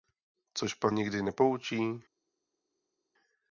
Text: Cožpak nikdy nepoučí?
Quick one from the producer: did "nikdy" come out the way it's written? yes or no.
yes